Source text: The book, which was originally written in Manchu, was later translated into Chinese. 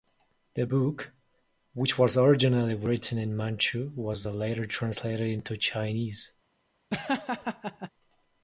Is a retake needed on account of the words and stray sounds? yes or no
yes